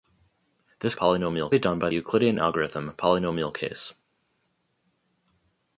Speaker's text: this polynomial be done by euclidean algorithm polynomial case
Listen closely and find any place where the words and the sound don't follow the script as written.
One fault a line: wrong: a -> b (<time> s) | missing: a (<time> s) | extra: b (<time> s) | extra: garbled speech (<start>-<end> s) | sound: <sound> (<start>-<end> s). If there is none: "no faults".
no faults